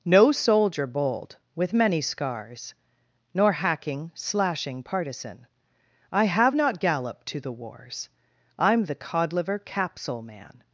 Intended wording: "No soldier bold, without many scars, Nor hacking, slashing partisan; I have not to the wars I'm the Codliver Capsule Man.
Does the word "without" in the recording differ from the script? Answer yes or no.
yes